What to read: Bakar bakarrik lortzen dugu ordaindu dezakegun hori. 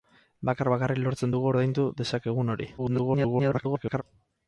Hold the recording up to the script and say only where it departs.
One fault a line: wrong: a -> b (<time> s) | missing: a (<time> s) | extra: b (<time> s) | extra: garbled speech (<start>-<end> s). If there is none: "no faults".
extra: garbled speech (2.8-4.0 s)